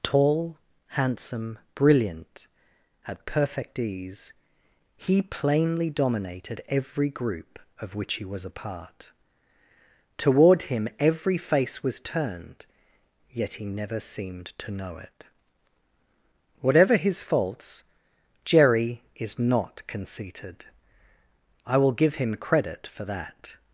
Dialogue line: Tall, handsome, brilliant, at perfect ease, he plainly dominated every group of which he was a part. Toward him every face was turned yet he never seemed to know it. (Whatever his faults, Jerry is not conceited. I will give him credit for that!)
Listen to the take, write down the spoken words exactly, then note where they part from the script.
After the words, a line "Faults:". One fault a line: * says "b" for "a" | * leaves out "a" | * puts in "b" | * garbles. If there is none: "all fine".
Tall, handsome, brilliant, at perfect ease, he plainly dominated every group of which he was a part. Toward him every face was turned yet he never seemed to know it. (Whatever his faults, Jerry is not conceited. I will give him credit for that!)
Faults:
all fine